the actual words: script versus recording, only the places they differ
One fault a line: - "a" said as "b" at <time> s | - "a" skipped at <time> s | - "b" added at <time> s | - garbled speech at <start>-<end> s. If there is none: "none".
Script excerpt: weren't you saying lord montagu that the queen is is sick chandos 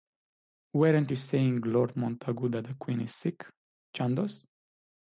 - "is" skipped at 3.1 s